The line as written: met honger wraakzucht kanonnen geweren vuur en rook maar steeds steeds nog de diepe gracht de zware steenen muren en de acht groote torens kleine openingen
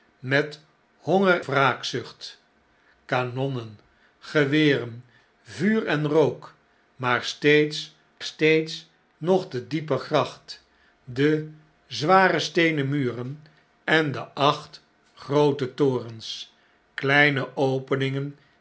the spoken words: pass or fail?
pass